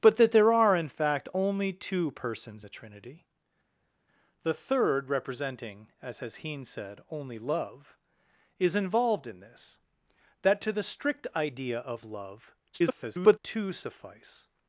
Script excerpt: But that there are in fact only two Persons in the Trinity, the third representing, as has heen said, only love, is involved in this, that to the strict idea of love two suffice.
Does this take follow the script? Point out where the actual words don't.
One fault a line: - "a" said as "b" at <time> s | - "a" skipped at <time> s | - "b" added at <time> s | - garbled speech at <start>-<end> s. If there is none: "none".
- "in" skipped at 2.7 s
- garbled speech at 12.7-13.4 s